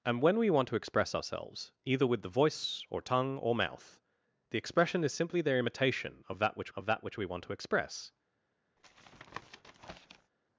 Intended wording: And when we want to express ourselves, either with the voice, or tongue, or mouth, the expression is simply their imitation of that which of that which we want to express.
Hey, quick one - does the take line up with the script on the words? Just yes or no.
yes